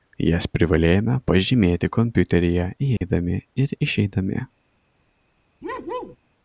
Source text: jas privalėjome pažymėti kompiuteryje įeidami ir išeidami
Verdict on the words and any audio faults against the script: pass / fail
fail